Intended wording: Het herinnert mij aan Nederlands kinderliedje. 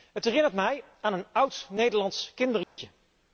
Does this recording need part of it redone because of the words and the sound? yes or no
yes